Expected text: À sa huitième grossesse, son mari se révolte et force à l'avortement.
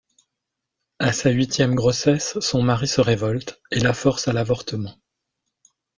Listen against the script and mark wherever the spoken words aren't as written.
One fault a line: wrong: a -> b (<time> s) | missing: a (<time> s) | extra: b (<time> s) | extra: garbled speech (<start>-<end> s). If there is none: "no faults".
extra: la (3.8 s)